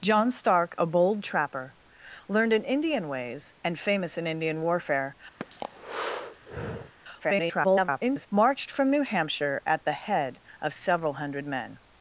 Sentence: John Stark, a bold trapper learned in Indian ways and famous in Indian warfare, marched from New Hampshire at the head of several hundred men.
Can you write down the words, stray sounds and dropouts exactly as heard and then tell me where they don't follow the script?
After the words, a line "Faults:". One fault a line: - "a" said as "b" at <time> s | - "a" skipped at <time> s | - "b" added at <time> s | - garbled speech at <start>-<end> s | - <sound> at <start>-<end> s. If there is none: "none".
John Stark, a bold trapper learned in Indian ways and famous in Indian warfare, [garbled] marched from New Hampshire at the head of several hundred men.
Faults:
- breath at 5.4-6.9 s
- garbled speech at 7.2-8.3 s